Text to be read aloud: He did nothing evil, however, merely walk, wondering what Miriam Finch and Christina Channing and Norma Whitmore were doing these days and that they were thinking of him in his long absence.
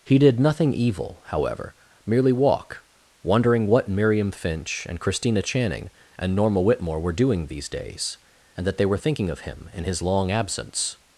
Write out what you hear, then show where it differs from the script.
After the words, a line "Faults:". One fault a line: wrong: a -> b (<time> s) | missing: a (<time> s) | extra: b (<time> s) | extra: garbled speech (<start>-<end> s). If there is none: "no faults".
He did nothing evil, however, merely walk, wondering what Miriam Finch and Christina Channing and Norma Whitmore were doing these days and that they were thinking of him in his long absence.
Faults:
no faults